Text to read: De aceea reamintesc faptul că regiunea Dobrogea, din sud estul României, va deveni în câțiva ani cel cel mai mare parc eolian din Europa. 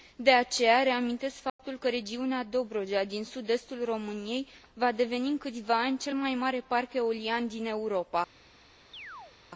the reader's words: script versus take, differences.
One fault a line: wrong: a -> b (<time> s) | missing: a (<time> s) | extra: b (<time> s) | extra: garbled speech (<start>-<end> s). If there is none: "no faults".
missing: cel (6.2 s)